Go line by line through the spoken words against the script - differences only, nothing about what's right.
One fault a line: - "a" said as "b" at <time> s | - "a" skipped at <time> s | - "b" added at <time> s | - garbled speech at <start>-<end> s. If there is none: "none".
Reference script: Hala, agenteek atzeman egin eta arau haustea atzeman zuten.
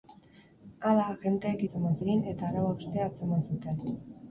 none